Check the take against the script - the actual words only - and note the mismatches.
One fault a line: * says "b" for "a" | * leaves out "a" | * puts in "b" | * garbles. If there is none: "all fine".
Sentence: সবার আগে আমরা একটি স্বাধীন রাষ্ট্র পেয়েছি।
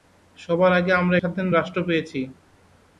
* leaves out "একটি"